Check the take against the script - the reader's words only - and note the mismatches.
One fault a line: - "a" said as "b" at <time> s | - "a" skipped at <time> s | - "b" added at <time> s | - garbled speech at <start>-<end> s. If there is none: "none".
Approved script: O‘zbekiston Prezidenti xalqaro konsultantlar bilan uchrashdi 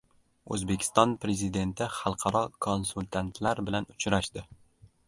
none